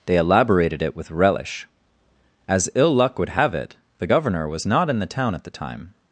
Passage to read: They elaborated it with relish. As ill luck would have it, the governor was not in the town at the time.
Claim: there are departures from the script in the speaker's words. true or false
false